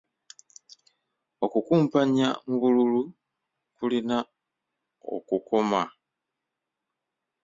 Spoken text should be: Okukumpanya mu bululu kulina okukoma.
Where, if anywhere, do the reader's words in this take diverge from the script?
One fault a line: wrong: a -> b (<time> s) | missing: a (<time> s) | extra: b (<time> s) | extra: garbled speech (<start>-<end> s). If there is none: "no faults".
no faults